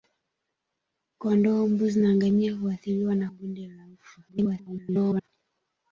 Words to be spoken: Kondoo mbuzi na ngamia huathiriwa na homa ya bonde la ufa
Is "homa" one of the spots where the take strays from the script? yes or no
yes